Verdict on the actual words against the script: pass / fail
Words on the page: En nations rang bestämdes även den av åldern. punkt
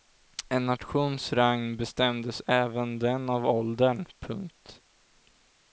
pass